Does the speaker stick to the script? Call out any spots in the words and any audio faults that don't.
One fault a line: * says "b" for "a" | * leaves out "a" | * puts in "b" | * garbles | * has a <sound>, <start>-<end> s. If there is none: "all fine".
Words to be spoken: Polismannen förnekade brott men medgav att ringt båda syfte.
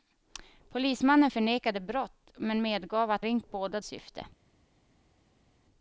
all fine